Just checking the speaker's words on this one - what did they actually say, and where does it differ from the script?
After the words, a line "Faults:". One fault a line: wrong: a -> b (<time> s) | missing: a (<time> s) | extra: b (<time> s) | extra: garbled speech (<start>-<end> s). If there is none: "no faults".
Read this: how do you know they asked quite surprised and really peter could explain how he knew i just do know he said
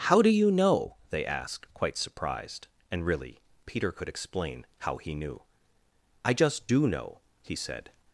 how do you know they asked quite surprised and really peter could explain how he knew i just do know he said
Faults:
no faults